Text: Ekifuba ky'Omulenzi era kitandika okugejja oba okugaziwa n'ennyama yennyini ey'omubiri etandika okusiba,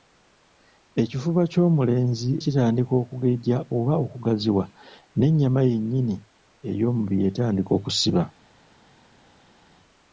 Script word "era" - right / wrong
wrong